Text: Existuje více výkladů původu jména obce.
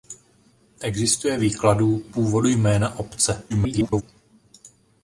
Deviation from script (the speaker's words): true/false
true